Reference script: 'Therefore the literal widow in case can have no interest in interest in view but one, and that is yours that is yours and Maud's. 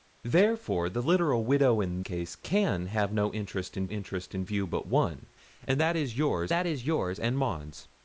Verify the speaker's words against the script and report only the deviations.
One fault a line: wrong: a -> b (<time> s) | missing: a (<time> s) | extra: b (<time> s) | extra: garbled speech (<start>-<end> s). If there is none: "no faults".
no faults